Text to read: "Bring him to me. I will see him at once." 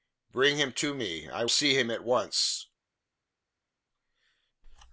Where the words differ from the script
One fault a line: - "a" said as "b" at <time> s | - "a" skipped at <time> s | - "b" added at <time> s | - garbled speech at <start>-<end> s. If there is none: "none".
- "will" skipped at 1.4 s